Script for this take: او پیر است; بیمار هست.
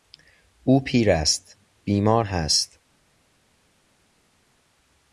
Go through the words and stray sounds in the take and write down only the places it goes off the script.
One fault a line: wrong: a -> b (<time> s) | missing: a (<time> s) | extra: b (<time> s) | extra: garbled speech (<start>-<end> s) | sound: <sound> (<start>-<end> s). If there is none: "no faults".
no faults